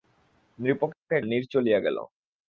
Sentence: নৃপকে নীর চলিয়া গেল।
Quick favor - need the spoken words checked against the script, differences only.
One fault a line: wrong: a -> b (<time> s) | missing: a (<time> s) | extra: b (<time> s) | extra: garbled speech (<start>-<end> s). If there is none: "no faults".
no faults